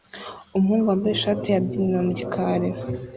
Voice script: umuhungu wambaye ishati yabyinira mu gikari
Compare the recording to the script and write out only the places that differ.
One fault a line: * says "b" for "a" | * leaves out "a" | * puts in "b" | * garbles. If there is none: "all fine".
all fine